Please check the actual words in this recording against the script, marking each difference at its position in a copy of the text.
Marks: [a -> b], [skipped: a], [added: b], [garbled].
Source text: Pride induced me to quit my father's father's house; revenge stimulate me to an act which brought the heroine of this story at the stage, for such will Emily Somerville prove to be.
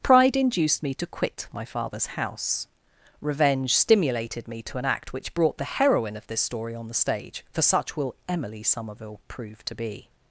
Pride induced me to quit my father's [skipped: father's] house; revenge [stimulate -> stimulated] me to an act which brought the heroine of this story [at -> on] the stage, for such will Emily Somerville prove to be.